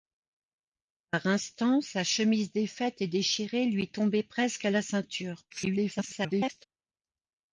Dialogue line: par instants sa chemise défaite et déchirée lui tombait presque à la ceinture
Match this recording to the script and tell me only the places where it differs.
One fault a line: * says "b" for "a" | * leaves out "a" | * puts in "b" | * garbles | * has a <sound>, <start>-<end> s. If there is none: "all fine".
* garbles